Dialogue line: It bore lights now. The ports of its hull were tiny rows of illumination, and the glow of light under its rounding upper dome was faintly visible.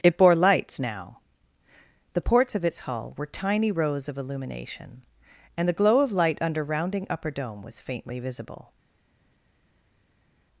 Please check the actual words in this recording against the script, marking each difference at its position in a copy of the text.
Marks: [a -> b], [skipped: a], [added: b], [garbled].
It bore lights now. The ports of its hull were tiny rows of illumination, and the glow of light under [skipped: its] rounding upper dome was faintly visible.